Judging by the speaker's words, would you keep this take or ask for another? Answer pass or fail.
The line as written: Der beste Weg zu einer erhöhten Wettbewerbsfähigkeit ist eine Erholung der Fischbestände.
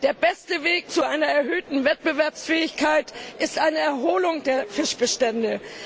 pass